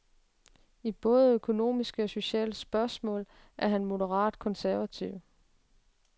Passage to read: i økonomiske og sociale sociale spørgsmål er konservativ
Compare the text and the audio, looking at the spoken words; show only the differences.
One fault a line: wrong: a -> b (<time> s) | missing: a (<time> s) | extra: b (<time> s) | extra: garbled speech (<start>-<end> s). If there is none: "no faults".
extra: både (0.9 s)
missing: sociale (2.5 s)
extra: han moderat (3.7 s)